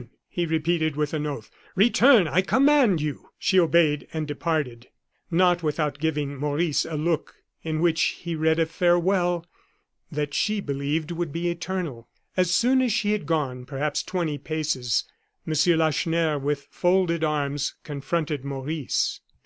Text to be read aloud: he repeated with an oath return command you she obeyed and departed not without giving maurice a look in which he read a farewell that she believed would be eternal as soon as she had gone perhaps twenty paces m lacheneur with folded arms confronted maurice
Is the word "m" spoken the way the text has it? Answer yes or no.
yes